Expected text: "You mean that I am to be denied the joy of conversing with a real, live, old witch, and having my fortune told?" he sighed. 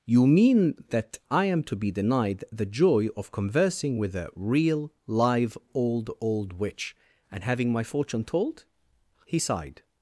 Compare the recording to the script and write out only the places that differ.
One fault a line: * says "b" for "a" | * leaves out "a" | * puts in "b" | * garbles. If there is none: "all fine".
* puts in "old"